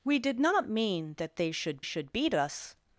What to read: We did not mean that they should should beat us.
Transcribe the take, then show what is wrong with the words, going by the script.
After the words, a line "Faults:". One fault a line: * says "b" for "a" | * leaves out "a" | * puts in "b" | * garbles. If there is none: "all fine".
We did not mean that they should should beat us.
Faults:
all fine